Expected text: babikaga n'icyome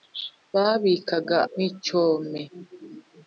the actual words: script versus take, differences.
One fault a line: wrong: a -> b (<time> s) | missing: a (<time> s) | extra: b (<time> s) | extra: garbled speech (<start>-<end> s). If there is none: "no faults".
no faults